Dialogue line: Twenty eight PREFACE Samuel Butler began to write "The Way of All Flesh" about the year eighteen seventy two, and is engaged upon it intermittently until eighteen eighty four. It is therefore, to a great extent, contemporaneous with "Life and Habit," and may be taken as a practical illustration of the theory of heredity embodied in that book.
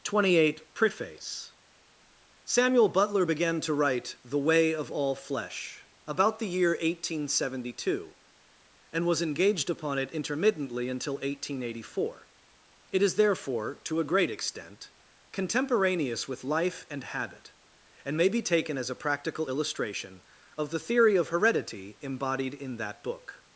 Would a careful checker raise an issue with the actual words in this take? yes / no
yes